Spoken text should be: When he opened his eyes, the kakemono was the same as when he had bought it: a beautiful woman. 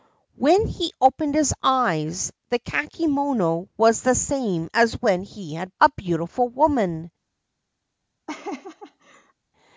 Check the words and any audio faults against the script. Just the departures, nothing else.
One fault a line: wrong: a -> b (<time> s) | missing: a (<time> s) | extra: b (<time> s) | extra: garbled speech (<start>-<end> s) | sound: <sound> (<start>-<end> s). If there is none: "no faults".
missing: bought it (5.8 s)
sound: laugh (8.3-9.3 s)